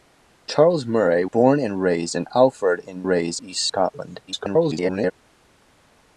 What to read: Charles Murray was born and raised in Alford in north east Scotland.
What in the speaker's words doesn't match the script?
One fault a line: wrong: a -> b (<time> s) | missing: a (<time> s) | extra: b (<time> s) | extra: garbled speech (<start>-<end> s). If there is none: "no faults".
missing: was (1.2 s)
wrong: north -> raised (3.1 s)
extra: garbled speech (4.3-5.1 s)